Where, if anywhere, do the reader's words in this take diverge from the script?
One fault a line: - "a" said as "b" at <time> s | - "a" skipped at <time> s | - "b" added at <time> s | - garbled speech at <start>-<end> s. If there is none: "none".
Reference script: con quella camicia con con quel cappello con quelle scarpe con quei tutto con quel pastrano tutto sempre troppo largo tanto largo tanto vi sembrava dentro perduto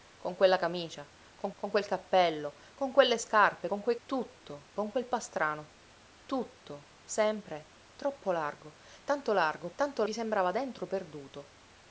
none